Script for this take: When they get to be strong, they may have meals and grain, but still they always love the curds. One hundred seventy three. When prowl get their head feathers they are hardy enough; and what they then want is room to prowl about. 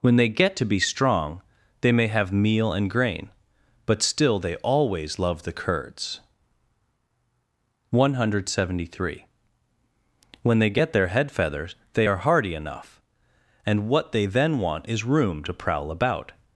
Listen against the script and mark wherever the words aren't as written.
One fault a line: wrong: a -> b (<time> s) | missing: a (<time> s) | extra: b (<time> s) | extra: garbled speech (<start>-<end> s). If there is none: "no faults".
wrong: meals -> meal (2.3 s)
wrong: prowl -> they (10.6 s)